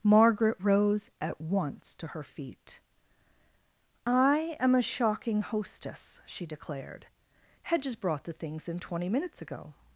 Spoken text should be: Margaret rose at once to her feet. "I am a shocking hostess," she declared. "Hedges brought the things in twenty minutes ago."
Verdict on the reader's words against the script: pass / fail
pass